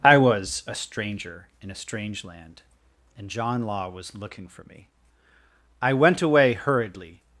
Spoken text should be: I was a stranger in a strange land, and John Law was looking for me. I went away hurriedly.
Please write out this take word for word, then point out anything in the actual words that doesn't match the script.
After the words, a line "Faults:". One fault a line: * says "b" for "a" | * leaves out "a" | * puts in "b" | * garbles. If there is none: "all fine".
I was a stranger in a strange land, and John Law was looking for me. I went away hurriedly.
Faults:
all fine